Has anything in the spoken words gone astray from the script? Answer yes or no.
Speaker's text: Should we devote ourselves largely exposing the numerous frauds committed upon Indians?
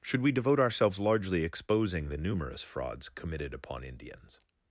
no